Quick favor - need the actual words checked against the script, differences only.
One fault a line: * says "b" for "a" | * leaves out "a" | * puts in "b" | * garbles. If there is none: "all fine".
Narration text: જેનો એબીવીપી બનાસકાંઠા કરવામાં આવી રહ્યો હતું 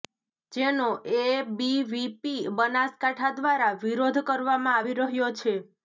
* puts in "દ્વારા વિરોધ"
* says "છે" for "હતું"